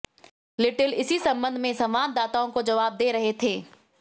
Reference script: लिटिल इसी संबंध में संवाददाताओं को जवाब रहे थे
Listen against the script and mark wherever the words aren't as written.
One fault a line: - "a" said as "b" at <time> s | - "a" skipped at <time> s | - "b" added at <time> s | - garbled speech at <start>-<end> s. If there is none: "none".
- "दे" added at 3.0 s